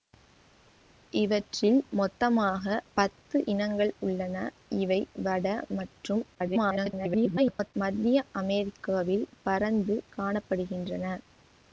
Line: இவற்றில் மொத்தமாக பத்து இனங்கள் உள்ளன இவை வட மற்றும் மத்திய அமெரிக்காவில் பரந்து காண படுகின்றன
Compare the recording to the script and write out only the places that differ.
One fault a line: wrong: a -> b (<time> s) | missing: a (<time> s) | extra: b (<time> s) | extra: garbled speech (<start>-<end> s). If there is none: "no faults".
extra: garbled speech (6.3-7.7 s)